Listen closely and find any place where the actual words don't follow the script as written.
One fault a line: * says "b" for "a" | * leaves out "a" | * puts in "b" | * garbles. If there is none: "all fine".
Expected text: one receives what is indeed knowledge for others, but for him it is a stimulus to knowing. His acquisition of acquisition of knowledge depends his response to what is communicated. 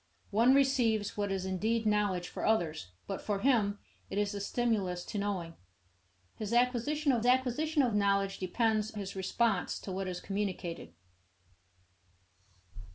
all fine